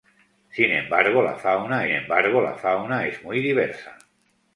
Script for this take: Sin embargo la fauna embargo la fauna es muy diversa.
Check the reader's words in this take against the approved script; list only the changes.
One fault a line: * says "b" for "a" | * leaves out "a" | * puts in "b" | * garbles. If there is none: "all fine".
all fine